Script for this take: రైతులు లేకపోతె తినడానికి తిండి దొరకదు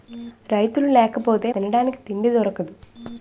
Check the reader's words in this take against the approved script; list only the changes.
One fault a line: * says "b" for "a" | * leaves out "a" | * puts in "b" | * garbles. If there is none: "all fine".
all fine